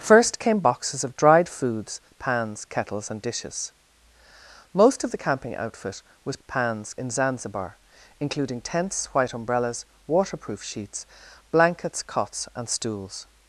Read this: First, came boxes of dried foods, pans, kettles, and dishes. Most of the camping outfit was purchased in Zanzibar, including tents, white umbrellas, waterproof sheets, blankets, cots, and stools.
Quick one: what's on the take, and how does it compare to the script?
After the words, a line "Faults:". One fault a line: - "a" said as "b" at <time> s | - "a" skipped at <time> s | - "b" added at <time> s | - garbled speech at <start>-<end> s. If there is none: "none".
First, came boxes of dried foods, pans, kettles, and dishes. Most of the camping outfit was pans in Zanzibar, including tents, white umbrellas, waterproof sheets, blankets, cots, and stools.
Faults:
- "purchased" said as "pans" at 6.5 s